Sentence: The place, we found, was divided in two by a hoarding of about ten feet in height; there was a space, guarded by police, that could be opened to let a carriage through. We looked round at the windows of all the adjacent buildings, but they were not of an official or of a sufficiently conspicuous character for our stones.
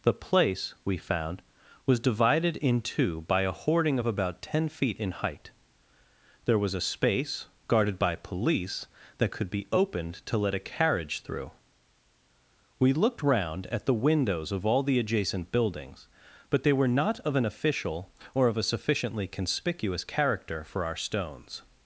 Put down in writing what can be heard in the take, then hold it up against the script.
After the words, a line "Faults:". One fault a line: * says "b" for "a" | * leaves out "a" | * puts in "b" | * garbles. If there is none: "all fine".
The place, we found, was divided in two by a hoarding of about ten feet in height; there was a space, guarded by police, that could be opened to let a carriage through. We looked round at the windows of all the adjacent buildings, but they were not of an official or of a sufficiently conspicuous character for our stones.
Faults:
all fine